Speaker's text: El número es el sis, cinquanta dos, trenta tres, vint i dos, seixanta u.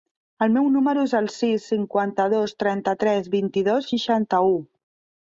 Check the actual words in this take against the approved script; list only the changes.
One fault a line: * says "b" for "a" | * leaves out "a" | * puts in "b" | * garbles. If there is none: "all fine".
* puts in "meu"